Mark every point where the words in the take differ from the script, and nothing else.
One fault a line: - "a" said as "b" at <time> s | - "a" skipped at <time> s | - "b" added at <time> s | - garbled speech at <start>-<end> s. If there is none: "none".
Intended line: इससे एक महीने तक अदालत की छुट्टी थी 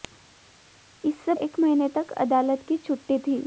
none